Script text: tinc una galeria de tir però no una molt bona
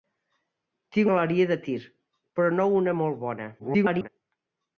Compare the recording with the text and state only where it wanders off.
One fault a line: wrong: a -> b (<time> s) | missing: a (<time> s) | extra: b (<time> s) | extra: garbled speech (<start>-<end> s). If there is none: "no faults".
missing: una (1.1 s)
extra: garbled speech (3.6-4.1 s)